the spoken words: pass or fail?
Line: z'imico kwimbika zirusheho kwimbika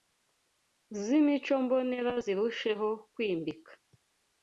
fail